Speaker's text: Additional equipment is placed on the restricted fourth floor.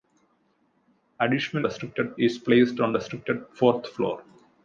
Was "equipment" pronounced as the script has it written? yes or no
no